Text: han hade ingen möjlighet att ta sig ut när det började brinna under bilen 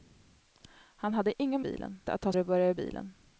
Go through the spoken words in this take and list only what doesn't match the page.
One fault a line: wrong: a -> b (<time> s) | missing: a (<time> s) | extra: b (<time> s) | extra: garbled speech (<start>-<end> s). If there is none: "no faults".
wrong: möjlighet -> bilen (1.6 s)
missing: sig ut när (2.3 s)
missing: brinna under (2.7 s)